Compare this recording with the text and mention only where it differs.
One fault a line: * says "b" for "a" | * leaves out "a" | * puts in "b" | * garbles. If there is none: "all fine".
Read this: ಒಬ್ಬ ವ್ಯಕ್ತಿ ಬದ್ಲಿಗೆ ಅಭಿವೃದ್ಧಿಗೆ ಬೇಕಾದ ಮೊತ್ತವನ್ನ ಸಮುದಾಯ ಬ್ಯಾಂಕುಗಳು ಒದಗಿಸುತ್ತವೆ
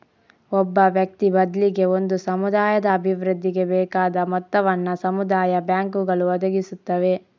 * puts in "ಒಂದು ಸಮುದಾಯದ"